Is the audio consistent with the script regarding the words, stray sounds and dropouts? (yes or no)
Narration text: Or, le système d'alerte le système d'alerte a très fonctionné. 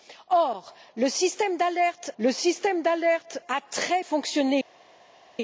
yes